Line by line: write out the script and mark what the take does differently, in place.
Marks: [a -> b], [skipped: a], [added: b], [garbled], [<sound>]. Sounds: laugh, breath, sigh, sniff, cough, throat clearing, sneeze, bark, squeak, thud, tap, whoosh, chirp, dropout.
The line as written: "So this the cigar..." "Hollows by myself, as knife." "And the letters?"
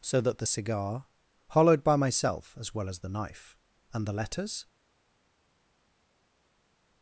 "So [this -> that] the cigar..." ["Hollows -> Hollowed] by myself, as [added: well as the] knife." "And the letters?"